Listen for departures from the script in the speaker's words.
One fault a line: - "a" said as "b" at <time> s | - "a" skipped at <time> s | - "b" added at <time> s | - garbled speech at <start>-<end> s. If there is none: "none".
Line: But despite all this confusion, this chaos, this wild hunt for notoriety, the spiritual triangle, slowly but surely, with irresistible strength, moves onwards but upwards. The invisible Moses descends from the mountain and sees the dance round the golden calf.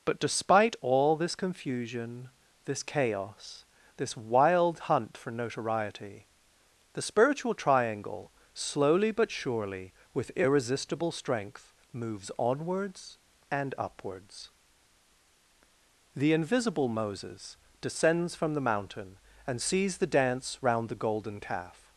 - "but" said as "and" at 13.5 s